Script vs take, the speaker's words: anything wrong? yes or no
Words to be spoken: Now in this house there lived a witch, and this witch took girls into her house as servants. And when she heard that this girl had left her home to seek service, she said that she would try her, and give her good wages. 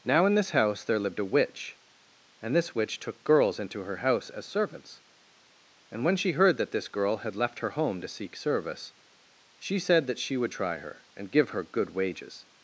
no